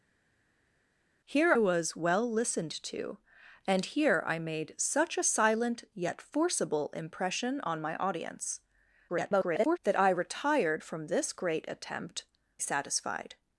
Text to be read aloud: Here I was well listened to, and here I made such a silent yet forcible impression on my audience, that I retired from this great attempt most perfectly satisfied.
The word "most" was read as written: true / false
false